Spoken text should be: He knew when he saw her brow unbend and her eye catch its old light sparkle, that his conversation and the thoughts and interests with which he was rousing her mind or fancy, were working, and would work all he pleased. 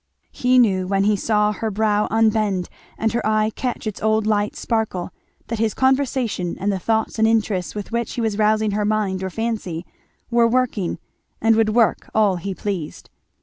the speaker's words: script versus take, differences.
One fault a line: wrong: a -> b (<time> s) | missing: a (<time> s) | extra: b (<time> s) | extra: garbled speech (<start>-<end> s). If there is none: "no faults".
no faults